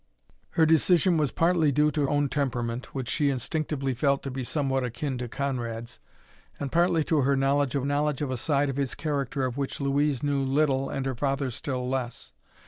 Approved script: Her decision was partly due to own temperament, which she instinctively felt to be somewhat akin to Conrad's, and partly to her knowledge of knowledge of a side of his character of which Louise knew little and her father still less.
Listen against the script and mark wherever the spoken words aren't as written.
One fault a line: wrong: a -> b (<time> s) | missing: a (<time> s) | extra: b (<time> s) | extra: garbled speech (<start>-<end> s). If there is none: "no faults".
no faults